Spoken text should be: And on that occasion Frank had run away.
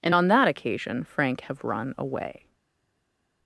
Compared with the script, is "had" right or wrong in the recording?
wrong